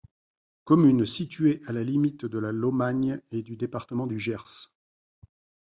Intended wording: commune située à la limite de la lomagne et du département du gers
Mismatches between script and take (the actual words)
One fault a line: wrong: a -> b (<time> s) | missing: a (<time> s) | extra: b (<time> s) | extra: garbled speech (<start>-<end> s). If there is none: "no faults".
no faults